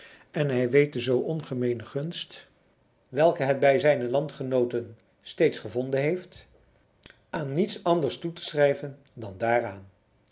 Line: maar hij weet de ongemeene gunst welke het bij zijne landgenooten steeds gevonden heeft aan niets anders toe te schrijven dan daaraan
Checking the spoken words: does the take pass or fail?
fail